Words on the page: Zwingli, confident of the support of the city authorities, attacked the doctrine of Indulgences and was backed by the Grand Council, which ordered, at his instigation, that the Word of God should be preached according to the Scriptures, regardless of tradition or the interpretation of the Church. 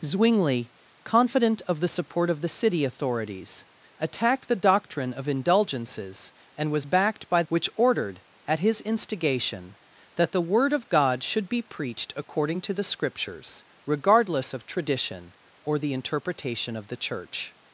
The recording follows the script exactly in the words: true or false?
false